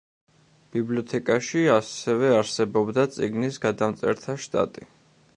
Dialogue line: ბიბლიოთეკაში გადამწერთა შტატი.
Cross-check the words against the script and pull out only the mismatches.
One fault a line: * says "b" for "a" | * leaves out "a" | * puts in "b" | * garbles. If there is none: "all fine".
* puts in "ასევე არსებობდა წიგნის"